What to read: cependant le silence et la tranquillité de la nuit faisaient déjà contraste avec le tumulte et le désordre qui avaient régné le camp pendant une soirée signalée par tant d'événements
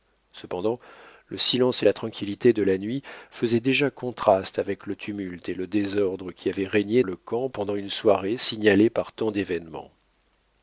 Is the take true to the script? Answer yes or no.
yes